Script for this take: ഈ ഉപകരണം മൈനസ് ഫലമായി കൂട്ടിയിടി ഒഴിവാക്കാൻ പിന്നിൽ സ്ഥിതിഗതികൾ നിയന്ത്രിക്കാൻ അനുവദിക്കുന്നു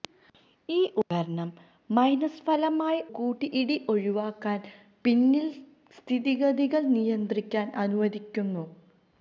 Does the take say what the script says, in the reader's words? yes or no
yes